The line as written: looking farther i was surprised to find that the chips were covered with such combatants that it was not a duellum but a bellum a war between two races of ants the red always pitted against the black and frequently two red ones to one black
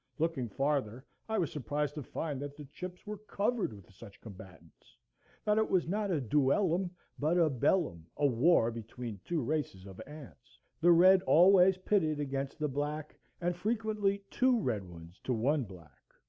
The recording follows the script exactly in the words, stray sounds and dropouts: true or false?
true